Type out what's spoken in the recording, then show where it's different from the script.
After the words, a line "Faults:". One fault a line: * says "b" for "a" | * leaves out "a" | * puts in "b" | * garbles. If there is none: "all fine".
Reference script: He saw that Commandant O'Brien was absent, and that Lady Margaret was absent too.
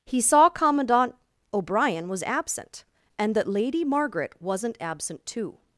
He saw Commandant O'Brien was absent, and that Lady Margaret wasn't absent too.
Faults:
* leaves out "that"
* says "wasn't" for "was"